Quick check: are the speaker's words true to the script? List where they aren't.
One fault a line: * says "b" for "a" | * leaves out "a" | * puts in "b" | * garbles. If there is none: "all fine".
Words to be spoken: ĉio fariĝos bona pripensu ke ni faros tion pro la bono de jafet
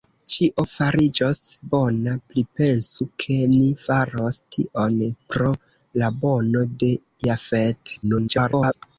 * garbles